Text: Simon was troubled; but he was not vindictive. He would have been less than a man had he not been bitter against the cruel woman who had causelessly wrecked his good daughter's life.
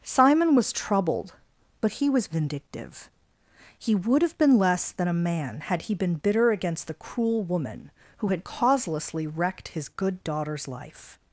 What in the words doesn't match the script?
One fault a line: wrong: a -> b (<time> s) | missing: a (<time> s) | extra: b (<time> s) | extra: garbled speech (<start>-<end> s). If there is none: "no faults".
missing: not (2.3 s)
missing: not (5.9 s)